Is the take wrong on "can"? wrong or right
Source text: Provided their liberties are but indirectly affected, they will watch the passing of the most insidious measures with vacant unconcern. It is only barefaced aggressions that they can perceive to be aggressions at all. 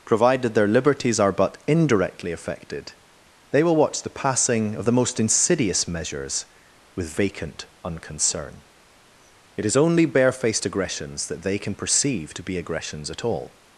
right